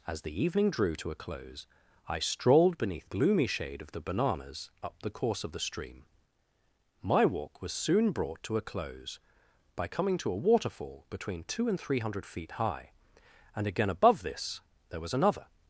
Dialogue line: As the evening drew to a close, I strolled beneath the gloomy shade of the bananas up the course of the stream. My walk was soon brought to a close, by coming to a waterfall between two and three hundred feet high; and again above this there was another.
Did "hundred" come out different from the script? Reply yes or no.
no